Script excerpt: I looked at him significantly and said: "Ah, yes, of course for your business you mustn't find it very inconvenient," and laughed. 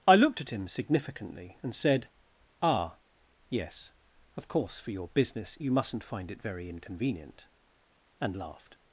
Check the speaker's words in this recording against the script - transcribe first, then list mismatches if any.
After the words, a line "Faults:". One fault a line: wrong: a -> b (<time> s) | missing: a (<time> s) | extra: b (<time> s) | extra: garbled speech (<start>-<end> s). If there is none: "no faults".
I looked at him significantly and said: "Ah, yes, of course for your business you mustn't find it very inconvenient," and laughed.
Faults:
no faults